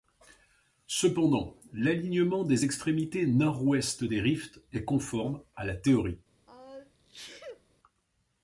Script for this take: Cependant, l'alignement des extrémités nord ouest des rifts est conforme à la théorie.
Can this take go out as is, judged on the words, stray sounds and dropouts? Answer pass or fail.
fail